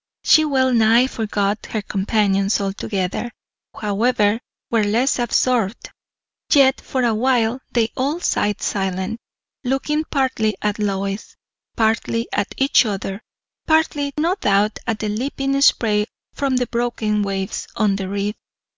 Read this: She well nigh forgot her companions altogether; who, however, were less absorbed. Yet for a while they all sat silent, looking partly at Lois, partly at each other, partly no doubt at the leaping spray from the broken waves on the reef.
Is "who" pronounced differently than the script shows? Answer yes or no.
yes